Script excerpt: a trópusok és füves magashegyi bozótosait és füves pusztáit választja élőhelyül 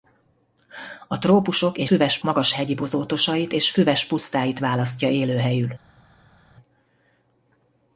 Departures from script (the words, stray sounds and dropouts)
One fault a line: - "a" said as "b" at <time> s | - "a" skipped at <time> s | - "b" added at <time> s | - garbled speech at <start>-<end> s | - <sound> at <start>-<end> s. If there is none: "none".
none